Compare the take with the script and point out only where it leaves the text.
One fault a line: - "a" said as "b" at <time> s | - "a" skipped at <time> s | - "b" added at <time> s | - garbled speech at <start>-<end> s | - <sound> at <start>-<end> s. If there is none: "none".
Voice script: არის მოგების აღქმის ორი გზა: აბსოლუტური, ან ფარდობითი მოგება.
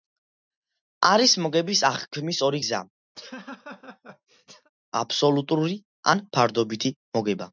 - laugh at 3.1-4.7 s